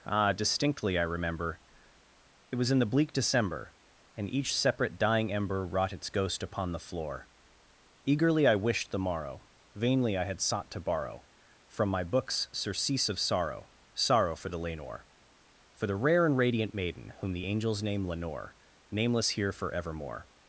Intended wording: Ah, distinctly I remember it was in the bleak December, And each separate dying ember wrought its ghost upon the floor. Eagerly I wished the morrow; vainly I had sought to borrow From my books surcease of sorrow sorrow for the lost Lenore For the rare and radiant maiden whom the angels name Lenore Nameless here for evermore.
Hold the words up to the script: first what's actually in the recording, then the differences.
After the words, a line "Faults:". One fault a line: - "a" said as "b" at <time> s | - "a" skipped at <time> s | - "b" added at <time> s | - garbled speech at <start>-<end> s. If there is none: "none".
Ah, distinctly I remember it was in the bleak December, And each separate dying ember wrought its ghost upon the floor. Eagerly I wished the morrow; vainly I had sought to borrow From my books surcease of sorrow sorrow for the Lenore For the rare and radiant maiden whom the angels name Lenore Nameless here for evermore.
Faults:
- "lost" skipped at 14.6 s